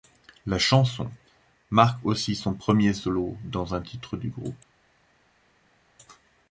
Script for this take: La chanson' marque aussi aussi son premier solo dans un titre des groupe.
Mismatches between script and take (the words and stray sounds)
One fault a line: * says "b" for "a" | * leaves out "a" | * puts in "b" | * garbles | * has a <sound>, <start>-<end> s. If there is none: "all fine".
* leaves out "aussi"
* says "du" for "des"